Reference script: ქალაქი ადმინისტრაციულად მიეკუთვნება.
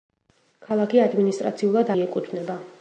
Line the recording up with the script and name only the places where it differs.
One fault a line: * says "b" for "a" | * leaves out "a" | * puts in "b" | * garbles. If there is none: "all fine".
all fine